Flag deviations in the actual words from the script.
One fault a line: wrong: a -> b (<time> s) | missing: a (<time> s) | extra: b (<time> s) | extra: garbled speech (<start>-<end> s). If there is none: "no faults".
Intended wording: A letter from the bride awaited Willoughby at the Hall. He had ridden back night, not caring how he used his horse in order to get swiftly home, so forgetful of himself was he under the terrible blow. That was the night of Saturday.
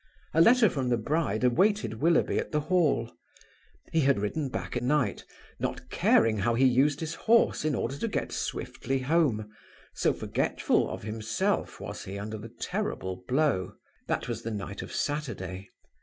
no faults